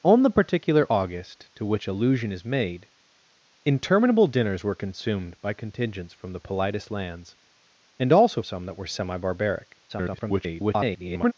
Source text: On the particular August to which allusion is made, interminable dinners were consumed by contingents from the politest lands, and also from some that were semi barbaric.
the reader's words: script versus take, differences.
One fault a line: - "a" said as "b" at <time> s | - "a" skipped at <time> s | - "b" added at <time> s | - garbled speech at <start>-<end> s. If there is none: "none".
- "from" skipped at 8.4 s
- garbled speech at 9.9-11.3 s